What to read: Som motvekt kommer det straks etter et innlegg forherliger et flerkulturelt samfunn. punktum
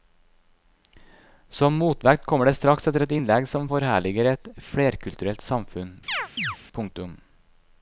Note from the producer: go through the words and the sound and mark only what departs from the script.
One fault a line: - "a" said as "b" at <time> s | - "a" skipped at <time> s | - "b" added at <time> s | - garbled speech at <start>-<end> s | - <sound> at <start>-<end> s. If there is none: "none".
- "som" added at 3.5 s
- chirp at 6.1-6.6 s